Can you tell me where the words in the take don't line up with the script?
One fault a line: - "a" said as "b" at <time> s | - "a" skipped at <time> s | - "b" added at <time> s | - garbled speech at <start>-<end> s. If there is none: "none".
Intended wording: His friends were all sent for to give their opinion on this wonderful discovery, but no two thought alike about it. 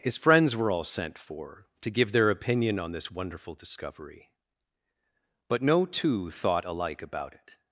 none